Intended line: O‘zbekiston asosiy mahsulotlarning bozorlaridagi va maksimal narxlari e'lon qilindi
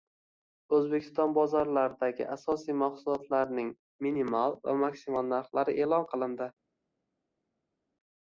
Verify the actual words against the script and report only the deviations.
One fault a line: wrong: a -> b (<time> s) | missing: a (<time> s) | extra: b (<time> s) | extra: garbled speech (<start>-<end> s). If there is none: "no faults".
extra: bozorlaridagi (1.4 s)
wrong: bozorlaridagi -> minimal (4.1 s)